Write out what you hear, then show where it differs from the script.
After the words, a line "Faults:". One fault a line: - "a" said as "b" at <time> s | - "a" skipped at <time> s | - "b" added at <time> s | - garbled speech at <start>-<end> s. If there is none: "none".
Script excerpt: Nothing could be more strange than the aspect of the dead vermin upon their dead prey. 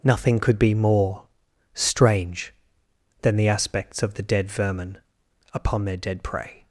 Nothing could be more strange than the aspects of the dead vermin upon their dead prey.
Faults:
- "aspect" said as "aspects" at 3.5 s